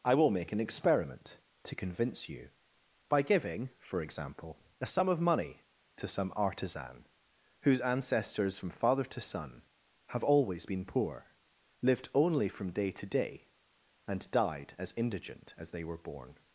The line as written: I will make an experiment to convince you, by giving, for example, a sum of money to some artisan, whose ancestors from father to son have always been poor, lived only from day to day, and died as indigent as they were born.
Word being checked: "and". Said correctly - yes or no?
yes